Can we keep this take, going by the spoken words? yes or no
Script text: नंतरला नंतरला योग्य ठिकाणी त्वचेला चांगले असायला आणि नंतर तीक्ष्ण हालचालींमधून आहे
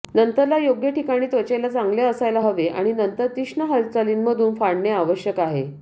no